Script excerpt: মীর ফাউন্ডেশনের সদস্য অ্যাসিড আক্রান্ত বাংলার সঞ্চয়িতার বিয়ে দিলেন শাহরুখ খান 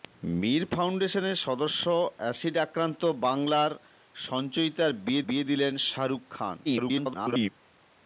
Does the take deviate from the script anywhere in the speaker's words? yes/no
yes